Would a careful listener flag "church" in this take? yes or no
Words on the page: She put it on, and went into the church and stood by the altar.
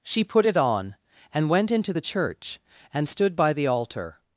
no